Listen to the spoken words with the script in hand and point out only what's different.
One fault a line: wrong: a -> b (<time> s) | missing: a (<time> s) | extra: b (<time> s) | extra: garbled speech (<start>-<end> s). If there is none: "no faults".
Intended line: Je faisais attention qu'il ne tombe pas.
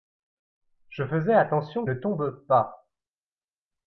missing: qu'il (1.9 s)